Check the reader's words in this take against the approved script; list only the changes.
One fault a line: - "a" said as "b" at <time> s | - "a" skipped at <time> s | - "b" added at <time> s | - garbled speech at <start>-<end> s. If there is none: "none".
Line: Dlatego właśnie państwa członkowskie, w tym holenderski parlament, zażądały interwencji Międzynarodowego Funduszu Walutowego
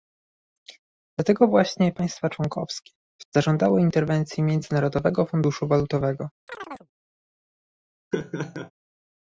- "tym holenderski parlament" skipped at 3.2 s